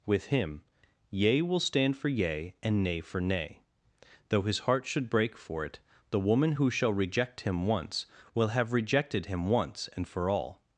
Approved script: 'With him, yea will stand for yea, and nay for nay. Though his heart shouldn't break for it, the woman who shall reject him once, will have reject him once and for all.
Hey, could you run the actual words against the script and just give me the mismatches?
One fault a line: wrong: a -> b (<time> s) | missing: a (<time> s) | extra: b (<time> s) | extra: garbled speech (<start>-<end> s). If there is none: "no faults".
wrong: shouldn't -> should (4.8 s)
wrong: reject -> rejected (8.7 s)